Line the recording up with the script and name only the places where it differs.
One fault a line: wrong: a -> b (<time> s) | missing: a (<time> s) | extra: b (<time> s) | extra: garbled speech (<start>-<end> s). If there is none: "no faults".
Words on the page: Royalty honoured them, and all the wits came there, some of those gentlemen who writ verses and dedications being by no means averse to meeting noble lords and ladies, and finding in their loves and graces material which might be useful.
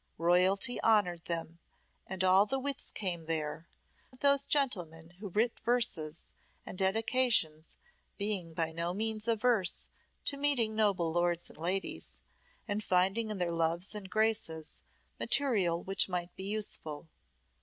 missing: some (3.7 s)